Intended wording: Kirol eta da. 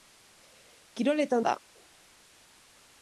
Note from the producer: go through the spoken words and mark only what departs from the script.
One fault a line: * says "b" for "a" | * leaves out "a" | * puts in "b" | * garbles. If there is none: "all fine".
all fine